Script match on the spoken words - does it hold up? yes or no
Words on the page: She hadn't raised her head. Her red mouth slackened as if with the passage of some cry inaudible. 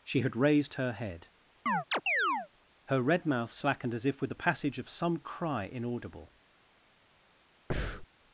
no